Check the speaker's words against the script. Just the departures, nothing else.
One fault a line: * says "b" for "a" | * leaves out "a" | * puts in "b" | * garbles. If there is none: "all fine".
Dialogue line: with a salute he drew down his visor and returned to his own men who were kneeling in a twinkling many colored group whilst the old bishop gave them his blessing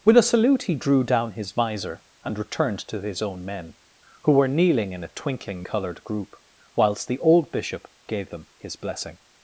* leaves out "many"